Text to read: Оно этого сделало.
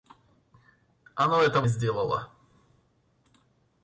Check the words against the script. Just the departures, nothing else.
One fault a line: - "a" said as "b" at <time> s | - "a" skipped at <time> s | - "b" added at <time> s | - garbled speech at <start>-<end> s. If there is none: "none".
none